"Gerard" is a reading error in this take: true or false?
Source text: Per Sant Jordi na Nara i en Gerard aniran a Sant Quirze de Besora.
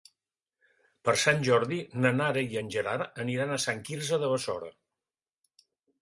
false